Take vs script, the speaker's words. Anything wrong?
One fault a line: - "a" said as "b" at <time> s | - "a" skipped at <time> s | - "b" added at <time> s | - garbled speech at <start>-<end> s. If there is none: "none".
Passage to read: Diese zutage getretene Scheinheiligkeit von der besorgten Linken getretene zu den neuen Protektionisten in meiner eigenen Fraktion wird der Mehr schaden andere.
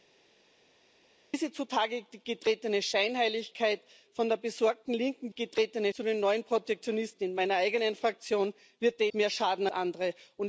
none